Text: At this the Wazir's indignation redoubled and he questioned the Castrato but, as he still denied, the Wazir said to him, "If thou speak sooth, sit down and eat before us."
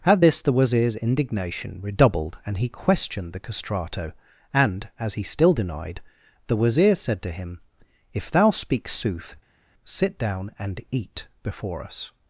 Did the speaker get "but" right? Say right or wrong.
wrong